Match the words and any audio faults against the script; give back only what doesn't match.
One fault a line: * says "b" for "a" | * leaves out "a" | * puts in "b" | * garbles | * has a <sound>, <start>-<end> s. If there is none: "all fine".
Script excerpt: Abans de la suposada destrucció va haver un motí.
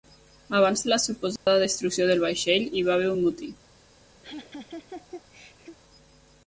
* has a dropout, 1.4-1.5 s
* puts in "del vaixell hi"
* has a laugh, 4.2-5.8 s